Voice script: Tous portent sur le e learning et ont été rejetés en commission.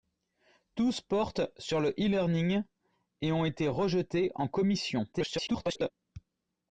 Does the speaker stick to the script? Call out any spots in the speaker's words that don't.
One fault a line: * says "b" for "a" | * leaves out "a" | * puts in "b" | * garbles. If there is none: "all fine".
* garbles